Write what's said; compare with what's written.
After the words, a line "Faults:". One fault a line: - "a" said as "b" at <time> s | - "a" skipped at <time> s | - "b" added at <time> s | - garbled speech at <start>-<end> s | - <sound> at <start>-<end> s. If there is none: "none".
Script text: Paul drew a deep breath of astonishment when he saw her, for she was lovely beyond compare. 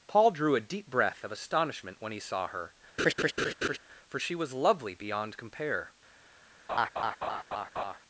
Paul drew a deep breath of astonishment when he saw her, for she was lovely beyond compare.
Faults:
- laugh at 3.0-3.8 s
- laugh at 6.7-8.0 s